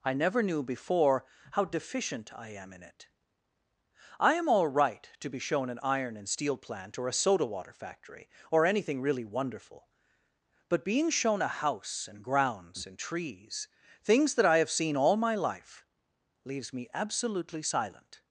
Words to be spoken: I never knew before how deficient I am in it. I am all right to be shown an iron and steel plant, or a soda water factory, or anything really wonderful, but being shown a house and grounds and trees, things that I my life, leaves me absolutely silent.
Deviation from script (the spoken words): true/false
true